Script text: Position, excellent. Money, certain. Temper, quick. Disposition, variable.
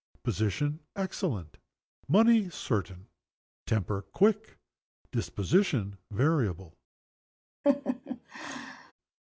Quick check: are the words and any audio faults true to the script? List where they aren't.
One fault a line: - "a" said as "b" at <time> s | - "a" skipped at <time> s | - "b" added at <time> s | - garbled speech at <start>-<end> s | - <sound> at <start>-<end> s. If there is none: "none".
- laugh at 7.6-8.9 s